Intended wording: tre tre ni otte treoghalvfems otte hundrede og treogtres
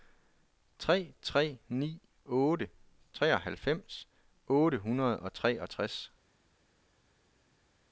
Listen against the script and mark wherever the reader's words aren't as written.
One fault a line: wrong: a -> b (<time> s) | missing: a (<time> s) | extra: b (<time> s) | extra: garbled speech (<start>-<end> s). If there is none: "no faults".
no faults